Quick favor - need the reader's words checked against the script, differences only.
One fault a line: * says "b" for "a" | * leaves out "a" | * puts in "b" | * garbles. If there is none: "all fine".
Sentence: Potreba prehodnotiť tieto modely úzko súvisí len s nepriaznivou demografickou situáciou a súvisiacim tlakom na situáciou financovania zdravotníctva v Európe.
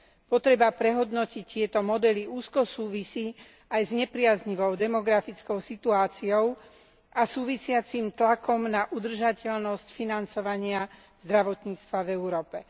* says "aj" for "len"
* says "udržateľnosť" for "situáciou"